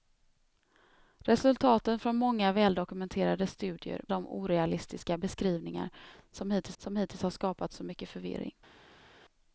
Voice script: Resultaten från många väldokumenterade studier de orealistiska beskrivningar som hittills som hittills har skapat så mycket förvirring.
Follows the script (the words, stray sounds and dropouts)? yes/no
yes